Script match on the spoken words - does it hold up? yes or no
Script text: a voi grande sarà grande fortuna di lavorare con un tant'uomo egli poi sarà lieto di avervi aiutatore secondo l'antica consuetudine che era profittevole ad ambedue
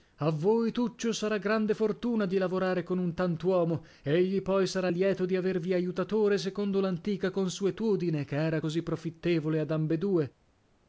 no